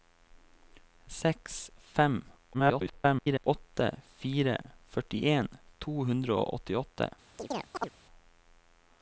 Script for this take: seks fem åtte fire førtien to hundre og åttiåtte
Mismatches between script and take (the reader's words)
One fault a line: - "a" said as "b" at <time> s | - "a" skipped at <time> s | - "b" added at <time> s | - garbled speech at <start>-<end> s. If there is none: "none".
- garbled speech at 2.5-3.5 s